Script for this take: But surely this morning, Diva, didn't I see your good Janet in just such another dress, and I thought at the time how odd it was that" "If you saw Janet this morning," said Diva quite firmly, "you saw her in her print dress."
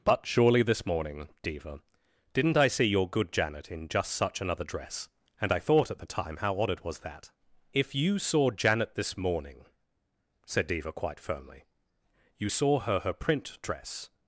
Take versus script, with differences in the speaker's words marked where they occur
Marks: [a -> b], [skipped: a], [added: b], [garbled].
But surely this morning, Diva, didn't I see your good Janet in just such another dress, and I thought at the time how odd it was that" "If you saw Janet this morning," said Diva quite firmly, "you saw her [skipped: in] her print dress."